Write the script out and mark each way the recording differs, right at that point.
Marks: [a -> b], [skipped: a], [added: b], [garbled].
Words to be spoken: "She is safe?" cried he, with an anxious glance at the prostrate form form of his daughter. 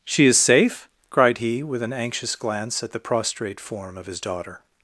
"She is safe?" cried he, with an anxious glance at the prostrate form [skipped: form] of his daughter.